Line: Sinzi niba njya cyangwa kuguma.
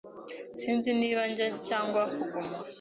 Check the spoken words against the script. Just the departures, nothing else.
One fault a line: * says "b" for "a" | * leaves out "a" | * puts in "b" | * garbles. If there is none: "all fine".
all fine